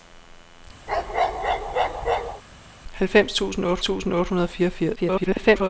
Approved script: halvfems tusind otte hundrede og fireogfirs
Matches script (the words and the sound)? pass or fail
fail